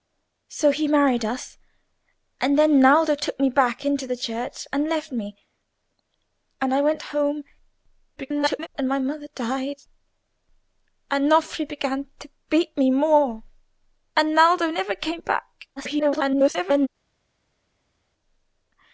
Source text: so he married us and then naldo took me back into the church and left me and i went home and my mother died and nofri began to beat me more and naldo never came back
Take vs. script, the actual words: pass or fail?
fail